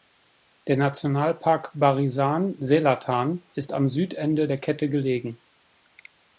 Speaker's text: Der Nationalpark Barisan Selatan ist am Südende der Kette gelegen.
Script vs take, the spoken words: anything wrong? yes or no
no